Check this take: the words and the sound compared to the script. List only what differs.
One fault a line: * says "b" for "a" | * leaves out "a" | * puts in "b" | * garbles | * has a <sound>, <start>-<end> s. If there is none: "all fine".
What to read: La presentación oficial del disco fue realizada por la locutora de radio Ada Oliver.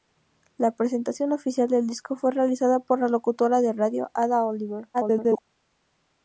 * garbles